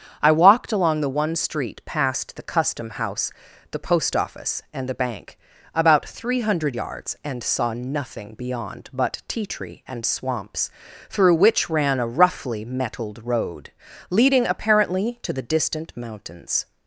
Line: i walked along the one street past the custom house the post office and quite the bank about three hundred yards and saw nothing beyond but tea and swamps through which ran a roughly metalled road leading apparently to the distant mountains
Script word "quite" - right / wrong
wrong